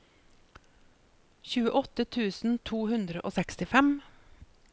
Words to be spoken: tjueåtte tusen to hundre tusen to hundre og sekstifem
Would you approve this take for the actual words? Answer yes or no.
no